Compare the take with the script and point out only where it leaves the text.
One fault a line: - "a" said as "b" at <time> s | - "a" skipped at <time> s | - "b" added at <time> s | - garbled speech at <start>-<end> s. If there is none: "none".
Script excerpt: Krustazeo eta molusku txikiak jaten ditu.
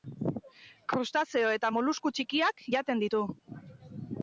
none